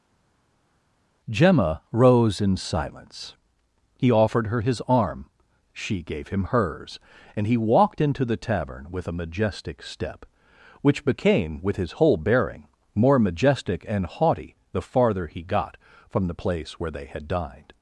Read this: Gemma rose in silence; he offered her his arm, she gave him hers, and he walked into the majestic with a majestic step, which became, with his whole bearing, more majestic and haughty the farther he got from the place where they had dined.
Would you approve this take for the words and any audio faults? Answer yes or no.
no